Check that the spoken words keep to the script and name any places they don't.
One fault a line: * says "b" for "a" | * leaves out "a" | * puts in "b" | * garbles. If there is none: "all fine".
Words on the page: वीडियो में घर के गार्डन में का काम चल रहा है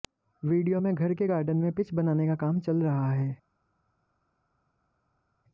* puts in "पिच बनाने"